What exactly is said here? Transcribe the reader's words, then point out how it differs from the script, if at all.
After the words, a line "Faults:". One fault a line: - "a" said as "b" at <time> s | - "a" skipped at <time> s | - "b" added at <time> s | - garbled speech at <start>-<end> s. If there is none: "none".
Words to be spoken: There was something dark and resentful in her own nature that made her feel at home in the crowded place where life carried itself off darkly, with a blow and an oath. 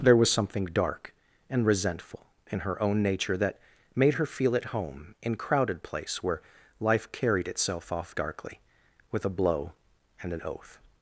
There was something dark and resentful in her own nature that made her feel at home in crowded place where life carried itself off darkly, with a blow and an oath.
Faults:
- "the" skipped at 5.4 s